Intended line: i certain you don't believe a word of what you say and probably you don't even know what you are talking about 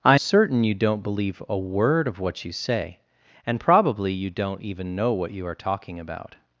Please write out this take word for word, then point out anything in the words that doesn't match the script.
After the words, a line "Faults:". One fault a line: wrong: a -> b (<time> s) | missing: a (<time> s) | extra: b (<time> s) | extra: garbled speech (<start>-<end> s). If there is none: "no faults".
i certain you don't believe a word of what you say and probably you don't even know what you are talking about
Faults:
no faults